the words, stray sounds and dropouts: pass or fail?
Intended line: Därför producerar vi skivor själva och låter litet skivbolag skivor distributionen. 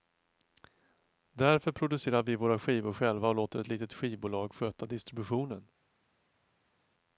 fail